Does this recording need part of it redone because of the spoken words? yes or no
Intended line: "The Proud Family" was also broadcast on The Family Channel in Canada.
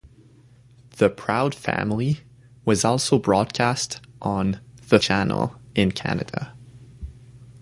yes